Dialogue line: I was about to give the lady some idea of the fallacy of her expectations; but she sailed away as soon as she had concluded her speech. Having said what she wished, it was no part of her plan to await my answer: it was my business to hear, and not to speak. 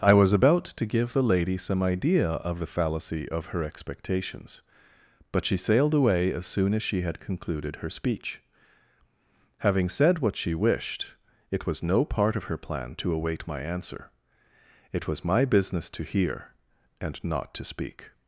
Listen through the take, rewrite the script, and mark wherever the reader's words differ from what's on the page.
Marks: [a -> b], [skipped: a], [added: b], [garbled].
I was about to give the lady some idea of the fallacy of her expectations; but she sailed away as soon as she had concluded her speech. Having said what she wished, it was no part of her plan to await my answer: it was my business to hear, and not to speak.